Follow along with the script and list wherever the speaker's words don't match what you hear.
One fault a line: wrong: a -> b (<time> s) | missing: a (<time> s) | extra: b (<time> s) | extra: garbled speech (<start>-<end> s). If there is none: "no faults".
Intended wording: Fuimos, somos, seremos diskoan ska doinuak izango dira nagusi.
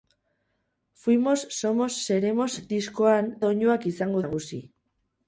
missing: ska (3.3 s)
missing: dira (4.2 s)